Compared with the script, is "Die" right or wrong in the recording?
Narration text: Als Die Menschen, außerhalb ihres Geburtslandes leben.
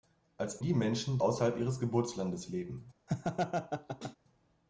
right